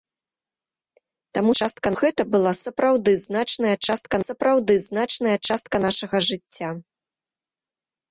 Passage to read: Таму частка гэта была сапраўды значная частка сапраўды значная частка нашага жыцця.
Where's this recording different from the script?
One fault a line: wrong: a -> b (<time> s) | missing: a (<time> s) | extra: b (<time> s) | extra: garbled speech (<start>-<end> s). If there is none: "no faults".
no faults